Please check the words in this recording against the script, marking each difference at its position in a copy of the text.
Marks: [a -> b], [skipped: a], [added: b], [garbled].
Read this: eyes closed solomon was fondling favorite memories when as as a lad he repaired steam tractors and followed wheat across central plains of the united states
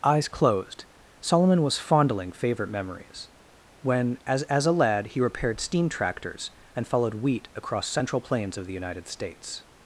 eyes closed solomon was fondling favorite memories when as as a lad he repaired steam tractors and followed wheat across central plains of the united states